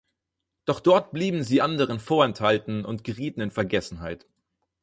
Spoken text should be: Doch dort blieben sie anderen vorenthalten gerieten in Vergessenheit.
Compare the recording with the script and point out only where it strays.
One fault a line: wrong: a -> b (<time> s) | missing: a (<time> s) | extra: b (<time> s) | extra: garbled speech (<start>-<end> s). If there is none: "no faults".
extra: und (2.9 s)